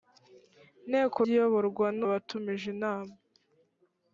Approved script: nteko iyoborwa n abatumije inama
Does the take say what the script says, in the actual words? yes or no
yes